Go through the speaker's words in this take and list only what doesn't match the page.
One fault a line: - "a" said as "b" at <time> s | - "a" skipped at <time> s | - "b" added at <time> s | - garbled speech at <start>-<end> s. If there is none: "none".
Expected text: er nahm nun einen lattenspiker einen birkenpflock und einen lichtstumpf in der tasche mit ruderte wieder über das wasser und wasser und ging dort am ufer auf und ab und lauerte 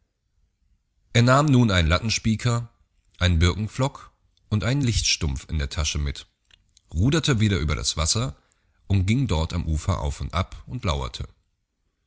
- "wasser und" skipped at 9.1 s